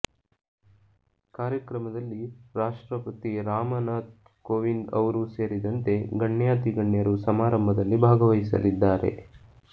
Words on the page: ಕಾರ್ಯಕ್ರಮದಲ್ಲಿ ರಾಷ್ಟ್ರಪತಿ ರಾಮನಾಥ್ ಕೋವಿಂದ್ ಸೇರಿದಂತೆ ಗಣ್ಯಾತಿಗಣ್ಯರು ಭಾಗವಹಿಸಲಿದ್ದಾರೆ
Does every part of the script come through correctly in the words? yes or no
no